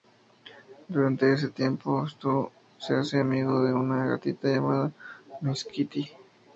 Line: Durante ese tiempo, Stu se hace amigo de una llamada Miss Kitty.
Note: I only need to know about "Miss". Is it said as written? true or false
true